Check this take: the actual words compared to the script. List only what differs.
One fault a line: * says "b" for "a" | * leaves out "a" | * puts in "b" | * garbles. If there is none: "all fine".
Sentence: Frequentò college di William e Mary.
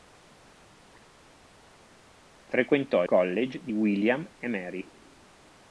all fine